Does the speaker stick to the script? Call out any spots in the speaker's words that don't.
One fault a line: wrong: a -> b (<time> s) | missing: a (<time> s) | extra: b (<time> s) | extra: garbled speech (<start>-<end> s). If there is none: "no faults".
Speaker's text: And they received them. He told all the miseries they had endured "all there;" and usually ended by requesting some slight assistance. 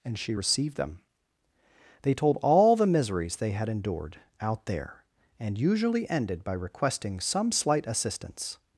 wrong: they -> she (0.2 s)
wrong: He -> They (2.0 s)
wrong: all -> out (4.4 s)